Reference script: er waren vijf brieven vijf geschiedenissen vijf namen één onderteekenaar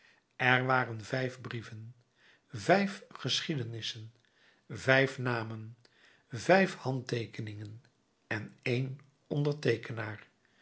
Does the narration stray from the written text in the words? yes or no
yes